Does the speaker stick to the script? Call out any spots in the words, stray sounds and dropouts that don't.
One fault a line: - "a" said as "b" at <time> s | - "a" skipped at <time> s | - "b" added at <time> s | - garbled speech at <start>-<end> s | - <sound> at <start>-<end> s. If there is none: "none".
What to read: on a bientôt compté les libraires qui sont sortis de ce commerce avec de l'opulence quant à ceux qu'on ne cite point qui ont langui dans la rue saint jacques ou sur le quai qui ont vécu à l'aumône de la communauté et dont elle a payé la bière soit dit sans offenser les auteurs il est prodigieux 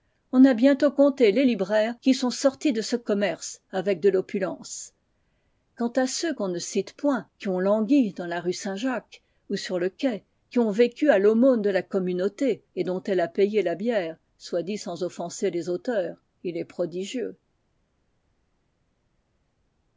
none